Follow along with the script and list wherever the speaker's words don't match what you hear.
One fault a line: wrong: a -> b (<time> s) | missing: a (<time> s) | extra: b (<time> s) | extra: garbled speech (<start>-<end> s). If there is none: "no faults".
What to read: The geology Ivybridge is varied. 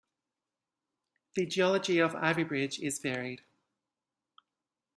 extra: of (2.0 s)